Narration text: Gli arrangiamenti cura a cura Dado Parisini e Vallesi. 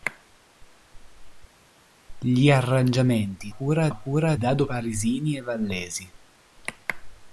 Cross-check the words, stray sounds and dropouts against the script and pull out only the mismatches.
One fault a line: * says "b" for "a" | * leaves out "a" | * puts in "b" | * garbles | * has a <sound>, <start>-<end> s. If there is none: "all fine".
all fine